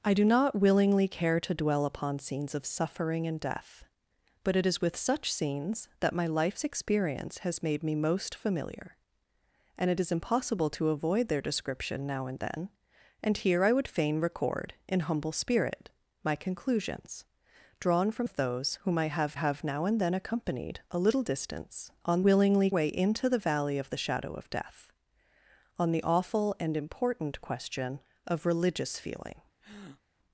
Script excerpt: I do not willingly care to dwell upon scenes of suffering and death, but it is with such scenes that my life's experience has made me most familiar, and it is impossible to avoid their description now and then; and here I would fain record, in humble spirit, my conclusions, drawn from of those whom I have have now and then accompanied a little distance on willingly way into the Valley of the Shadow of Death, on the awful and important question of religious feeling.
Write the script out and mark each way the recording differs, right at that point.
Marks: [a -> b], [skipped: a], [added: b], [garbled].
I do not willingly care to dwell upon scenes of suffering and death, but it is with such scenes that my life's experience has made me most familiar, and it is impossible to avoid their description now and then; and here I would fain record, in humble spirit, my conclusions, drawn from of those whom I have have now and then accompanied a little distance on willingly way into the Valley of the Shadow of Death, on the awful and important question of religious feeling.